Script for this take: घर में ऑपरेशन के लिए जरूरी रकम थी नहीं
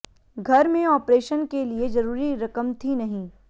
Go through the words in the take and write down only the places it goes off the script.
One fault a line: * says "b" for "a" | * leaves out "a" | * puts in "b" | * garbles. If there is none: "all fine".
all fine